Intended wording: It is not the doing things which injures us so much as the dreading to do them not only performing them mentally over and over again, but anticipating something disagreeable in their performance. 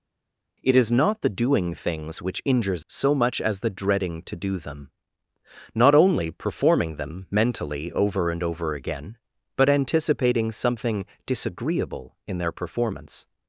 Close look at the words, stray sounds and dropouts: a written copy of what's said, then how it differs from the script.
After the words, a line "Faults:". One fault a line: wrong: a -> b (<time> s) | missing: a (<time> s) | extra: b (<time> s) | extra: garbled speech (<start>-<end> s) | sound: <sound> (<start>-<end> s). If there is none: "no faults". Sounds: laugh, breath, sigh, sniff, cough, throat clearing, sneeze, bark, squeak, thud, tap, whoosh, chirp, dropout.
It is not the doing things which injures so much as the dreading to do them not only performing them mentally over and over again, but anticipating something disagreeable in their performance.
Faults:
missing: us (2.8 s)